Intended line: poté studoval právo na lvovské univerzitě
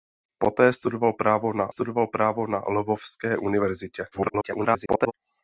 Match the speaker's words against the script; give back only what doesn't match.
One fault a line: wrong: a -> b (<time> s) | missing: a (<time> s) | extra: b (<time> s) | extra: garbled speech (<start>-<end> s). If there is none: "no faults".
extra: studoval právo na (1.7 s)
extra: garbled speech (4.1-5.1 s)